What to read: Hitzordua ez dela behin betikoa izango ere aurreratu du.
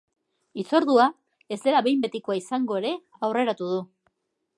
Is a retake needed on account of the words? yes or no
no